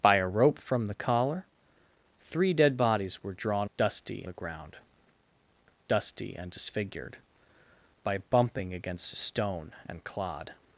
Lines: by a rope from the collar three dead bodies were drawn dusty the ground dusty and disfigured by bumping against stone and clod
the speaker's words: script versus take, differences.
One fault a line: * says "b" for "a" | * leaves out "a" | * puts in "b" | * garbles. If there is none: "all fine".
all fine